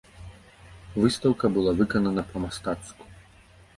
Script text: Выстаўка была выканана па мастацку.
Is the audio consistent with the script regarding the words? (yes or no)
yes